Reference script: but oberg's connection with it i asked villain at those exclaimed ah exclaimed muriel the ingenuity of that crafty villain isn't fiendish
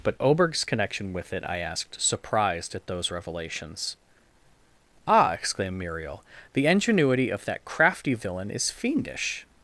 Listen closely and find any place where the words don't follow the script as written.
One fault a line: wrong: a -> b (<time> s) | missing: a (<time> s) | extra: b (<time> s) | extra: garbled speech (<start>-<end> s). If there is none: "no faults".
wrong: villain -> surprised (2.0 s)
wrong: exclaimed -> revelations (3.1 s)
wrong: isn't -> is (8.5 s)